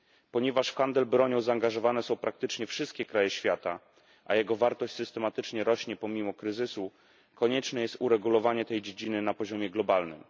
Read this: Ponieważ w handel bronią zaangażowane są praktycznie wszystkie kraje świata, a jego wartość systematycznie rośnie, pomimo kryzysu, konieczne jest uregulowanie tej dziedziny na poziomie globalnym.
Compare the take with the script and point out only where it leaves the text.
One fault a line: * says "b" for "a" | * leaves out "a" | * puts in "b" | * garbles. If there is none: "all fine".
all fine